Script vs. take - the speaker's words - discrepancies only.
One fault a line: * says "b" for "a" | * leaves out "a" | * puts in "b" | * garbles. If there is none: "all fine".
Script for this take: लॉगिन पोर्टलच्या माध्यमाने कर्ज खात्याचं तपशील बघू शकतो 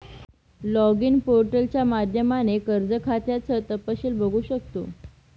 all fine